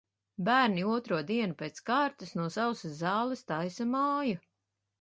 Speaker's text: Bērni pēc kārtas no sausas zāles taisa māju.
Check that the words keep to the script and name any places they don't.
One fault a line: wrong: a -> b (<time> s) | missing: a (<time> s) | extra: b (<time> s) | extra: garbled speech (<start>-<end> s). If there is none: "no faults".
extra: otro dienu (0.9 s)